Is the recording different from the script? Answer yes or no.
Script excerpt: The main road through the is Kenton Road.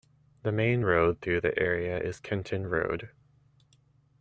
yes